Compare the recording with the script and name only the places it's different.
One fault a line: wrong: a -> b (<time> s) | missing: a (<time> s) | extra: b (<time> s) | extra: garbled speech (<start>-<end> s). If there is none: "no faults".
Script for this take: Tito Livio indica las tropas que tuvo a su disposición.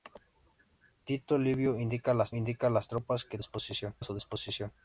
extra: indica las (2.3 s)
wrong: tuvo -> disposición (3.4 s)